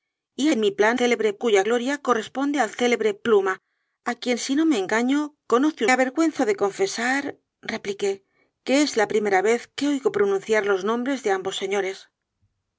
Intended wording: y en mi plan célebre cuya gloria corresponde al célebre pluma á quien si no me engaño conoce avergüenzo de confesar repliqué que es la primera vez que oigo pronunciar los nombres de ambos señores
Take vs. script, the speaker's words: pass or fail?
pass